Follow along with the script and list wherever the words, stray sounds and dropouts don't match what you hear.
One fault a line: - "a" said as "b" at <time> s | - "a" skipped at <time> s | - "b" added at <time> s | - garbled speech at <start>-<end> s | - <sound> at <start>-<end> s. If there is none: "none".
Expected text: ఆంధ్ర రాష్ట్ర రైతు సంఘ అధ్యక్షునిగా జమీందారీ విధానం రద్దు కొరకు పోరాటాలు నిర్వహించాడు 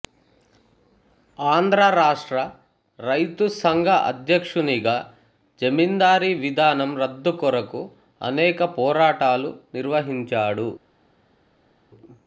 - "అనేక" added at 8.2 s